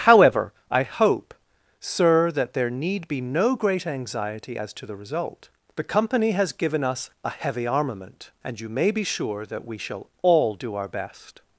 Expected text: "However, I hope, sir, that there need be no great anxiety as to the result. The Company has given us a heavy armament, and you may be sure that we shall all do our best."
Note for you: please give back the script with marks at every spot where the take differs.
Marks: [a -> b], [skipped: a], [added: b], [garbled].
"However, I hope, sir, that there need be no great anxiety as to the result. The Company has given us a heavy armament, and you may be sure that we shall all do our best."